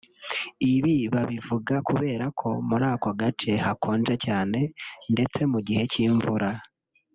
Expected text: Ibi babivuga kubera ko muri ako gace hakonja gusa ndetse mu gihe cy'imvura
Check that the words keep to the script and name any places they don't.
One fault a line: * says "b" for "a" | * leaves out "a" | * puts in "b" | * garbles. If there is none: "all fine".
* says "cyane" for "gusa"